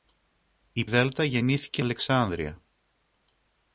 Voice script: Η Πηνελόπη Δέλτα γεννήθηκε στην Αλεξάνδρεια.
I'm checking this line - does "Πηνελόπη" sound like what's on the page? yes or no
no